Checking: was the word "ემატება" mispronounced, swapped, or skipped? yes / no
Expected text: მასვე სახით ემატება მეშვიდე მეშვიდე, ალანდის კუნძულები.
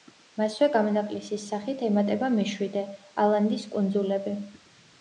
no